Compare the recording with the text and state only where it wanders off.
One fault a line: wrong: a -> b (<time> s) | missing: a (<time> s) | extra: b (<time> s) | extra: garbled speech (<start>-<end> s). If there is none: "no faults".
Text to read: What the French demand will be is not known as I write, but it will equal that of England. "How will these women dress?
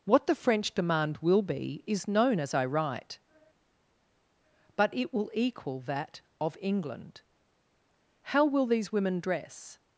missing: not (2.1 s)